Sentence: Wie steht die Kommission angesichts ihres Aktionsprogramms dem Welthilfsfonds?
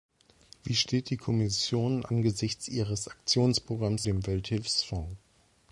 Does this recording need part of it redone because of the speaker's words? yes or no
no